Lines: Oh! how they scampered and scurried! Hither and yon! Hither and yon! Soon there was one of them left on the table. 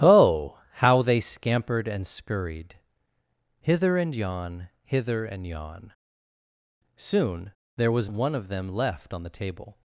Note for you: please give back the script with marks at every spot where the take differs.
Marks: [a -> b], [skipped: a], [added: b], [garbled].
Oh! how they scampered and scurried! Hither and yon! Hither and yon! Soon there was one of them left on the table.